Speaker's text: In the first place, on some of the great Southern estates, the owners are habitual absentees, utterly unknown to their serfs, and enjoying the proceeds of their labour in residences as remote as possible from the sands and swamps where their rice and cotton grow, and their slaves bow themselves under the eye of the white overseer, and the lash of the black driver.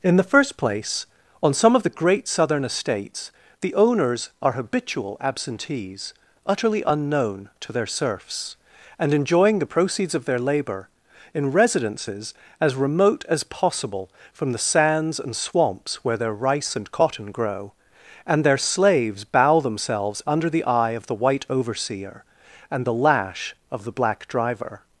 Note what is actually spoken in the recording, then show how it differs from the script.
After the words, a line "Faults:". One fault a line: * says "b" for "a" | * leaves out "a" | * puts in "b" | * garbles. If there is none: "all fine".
In the first place, on some of the great Southern estates, the owners are habitual absentees, utterly unknown to their serfs, and enjoying the proceeds of their labour in residences as remote as possible from the sands and swamps where their rice and cotton grow, and their slaves bow themselves under the eye of the white overseer, and the lash of the black driver.
Faults:
all fine